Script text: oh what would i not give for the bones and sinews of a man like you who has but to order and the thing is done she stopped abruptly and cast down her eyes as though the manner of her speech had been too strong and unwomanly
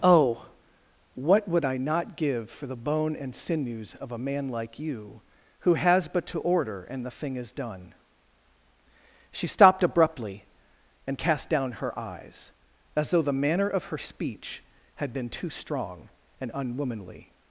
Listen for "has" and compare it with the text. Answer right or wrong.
right